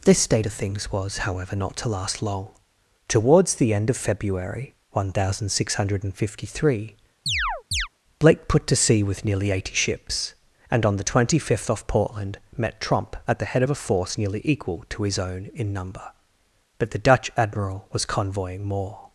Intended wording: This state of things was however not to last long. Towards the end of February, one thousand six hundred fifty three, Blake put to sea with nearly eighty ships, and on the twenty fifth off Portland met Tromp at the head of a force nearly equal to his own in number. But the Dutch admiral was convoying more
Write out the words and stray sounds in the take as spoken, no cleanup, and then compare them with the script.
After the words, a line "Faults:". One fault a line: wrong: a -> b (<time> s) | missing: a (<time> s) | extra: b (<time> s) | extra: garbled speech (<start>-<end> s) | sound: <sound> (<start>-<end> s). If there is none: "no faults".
This state of things was however not to last long. Towards the end of February, one thousand six hundred fifty three, Blake put to sea with nearly eighty ships, and on the twenty fifth off Portland met Tromp at the head of a force nearly equal to his own in number. But the Dutch admiral was convoying more
Faults:
sound: chirp (7.3-7.9 s)